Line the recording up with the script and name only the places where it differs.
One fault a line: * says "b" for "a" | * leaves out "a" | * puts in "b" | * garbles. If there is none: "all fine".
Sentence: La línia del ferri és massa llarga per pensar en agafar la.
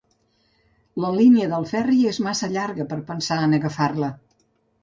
all fine